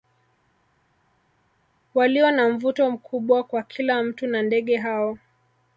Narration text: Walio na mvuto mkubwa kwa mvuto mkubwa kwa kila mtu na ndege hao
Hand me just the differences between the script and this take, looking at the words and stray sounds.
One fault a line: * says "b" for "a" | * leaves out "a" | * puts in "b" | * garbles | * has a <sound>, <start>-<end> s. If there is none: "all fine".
* leaves out "mvuto mkubwa kwa"